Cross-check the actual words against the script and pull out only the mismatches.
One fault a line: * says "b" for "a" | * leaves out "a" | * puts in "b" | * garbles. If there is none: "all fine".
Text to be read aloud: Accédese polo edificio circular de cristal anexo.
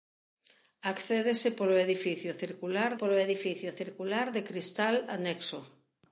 * puts in "polo edificio circular"